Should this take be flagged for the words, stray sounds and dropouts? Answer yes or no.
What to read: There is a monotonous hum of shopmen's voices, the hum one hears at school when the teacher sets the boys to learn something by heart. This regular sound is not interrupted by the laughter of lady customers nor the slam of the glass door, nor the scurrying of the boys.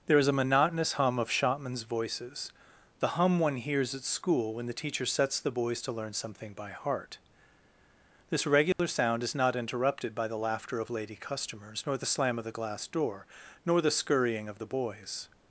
yes